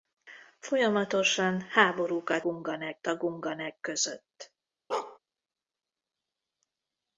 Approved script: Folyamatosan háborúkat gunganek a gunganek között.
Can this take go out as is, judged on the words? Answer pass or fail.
pass